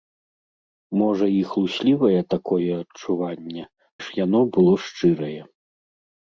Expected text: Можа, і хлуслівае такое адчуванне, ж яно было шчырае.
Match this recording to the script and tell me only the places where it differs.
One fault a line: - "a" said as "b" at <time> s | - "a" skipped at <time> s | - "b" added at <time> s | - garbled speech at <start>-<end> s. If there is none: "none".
none